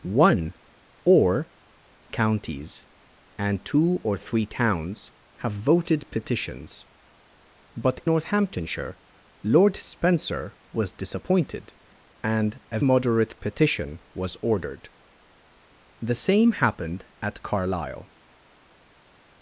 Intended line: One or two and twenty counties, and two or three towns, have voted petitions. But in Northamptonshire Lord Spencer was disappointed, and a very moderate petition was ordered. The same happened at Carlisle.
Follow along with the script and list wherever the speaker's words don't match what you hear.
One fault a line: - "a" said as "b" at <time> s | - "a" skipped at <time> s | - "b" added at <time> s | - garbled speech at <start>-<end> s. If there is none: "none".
- "two and twenty" skipped at 1.5 s
- "in" skipped at 8.0 s
- "very" skipped at 12.8 s